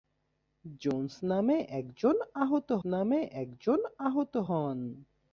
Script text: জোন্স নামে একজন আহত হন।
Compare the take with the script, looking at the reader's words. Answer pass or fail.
fail